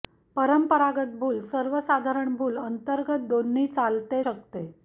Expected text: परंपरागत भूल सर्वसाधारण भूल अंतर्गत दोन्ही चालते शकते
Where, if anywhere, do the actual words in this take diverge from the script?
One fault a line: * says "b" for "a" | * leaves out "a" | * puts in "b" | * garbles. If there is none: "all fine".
all fine